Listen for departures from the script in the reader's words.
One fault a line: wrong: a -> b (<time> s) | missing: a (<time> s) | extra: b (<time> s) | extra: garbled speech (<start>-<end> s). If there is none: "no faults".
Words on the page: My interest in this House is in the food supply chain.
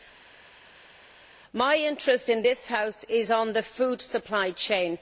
no faults